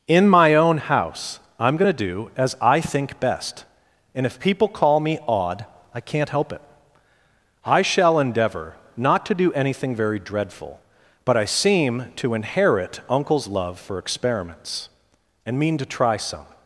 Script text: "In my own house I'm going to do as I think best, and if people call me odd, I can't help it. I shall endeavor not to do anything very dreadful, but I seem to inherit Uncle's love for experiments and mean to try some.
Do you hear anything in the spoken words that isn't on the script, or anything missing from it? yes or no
no